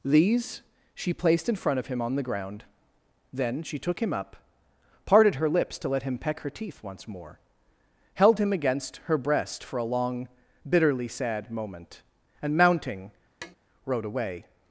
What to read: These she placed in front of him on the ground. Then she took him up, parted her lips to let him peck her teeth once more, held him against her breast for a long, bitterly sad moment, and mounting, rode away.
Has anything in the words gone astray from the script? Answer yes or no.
no